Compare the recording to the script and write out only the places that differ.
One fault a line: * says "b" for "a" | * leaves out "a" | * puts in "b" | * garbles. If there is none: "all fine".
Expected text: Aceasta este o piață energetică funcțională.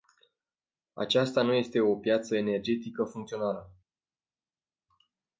* puts in "nu"